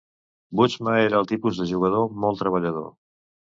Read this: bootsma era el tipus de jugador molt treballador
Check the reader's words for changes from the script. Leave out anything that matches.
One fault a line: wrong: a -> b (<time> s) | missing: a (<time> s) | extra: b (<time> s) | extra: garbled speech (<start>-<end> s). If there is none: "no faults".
no faults